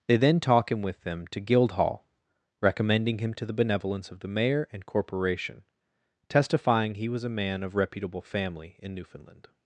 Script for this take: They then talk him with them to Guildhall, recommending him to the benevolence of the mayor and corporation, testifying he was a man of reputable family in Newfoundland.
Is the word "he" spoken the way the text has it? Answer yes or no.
yes